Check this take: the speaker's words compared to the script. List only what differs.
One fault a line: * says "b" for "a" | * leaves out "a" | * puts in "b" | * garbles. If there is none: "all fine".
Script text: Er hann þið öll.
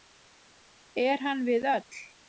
* says "við" for "þið"